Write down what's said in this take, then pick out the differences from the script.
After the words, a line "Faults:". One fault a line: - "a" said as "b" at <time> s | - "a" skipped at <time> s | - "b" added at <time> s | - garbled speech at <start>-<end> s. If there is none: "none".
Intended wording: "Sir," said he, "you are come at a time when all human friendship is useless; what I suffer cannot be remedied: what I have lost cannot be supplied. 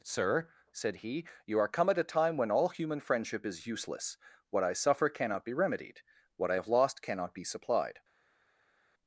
"Sir," said he, "you are come at a time when all human friendship is useless; what I suffer cannot be remedied: what I have lost cannot be supplied.
Faults:
none